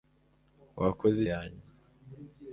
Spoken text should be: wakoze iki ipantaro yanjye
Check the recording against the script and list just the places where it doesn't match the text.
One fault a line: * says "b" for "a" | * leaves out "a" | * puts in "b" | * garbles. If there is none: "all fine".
* leaves out "iki ipantaro"